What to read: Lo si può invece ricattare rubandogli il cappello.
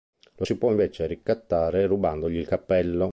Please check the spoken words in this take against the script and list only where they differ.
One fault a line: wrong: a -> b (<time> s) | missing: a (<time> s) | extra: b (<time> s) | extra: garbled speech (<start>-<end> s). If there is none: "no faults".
no faults